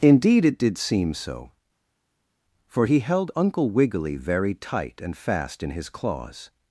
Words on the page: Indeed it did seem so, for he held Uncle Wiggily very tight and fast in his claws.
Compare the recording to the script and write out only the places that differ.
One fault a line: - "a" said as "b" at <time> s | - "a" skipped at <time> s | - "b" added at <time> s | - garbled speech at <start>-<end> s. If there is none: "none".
none